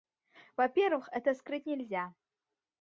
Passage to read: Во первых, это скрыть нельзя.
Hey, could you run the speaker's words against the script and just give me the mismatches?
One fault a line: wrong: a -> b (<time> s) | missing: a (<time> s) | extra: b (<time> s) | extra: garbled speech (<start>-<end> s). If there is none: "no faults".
no faults